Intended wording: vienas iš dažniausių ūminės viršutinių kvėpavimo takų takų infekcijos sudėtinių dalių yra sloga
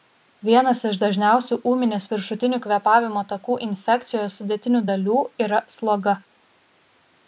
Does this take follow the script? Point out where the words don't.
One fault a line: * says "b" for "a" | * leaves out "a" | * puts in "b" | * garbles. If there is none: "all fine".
* leaves out "takų"